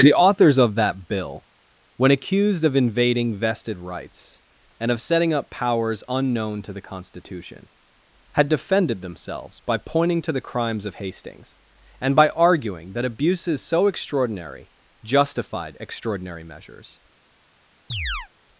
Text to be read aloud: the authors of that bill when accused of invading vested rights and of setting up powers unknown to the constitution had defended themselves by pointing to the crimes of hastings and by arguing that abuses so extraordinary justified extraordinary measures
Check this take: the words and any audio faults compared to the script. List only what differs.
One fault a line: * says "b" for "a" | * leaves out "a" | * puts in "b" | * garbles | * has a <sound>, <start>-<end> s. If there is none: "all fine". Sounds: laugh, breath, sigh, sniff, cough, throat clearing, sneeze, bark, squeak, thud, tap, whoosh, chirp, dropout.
* has a chirp, 17.9-18.3 s